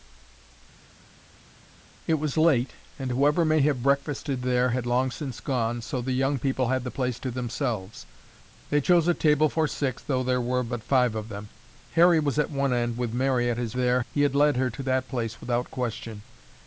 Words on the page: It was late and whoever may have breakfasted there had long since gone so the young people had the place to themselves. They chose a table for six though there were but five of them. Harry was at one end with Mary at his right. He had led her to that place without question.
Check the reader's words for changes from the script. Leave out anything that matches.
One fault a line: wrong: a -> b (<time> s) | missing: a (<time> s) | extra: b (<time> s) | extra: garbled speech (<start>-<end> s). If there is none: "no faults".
wrong: right -> there (13.7 s)